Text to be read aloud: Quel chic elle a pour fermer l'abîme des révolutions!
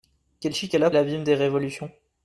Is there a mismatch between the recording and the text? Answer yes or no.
yes